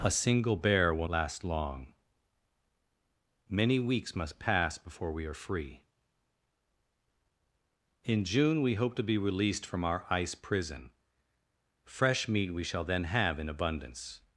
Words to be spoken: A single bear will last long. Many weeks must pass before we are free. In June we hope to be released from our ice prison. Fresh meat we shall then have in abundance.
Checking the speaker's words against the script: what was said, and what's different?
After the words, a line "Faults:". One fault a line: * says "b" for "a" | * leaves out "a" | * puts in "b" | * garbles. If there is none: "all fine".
A single bear will last long. Many weeks must pass before we are free. In June we hope to be released from our ice prison. Fresh meat we shall then have in abundance.
Faults:
all fine